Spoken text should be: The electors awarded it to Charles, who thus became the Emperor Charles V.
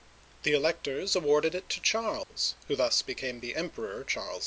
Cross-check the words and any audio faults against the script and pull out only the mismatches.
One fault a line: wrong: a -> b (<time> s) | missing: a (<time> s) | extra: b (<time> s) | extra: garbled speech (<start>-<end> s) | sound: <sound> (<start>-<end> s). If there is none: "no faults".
sound: dropout (2.2-2.3 s)